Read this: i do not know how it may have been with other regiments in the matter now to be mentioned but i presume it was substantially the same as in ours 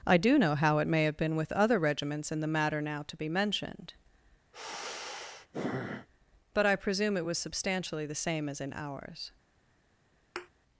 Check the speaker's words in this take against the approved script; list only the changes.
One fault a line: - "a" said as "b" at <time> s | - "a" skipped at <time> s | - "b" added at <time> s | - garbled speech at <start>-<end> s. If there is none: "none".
- "not" skipped at 0.4 s